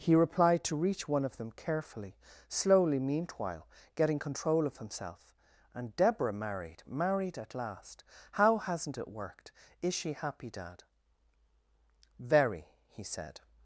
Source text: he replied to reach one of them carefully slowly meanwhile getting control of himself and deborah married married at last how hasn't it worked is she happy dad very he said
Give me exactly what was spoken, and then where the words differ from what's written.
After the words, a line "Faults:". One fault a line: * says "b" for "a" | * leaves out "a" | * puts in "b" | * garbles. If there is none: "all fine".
he replied to reach one of them carefully slowly meanwhile getting control of himself and deborah married married at last how hasn't it worked is she happy dad very he said
Faults:
all fine